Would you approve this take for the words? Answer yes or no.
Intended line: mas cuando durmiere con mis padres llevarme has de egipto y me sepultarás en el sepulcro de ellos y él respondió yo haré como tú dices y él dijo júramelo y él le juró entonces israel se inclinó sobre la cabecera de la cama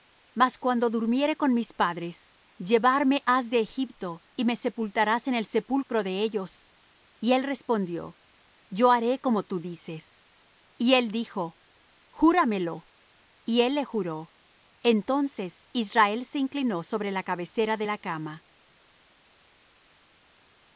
yes